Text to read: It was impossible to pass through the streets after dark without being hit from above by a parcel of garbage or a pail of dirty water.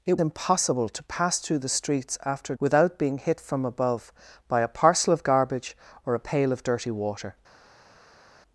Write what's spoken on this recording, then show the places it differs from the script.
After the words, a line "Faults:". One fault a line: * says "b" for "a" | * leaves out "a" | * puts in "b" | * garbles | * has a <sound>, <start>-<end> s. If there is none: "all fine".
It impossible to pass through the streets after without being hit from above by a parcel of garbage or a pail of dirty water.
Faults:
* leaves out "was"
* leaves out "dark"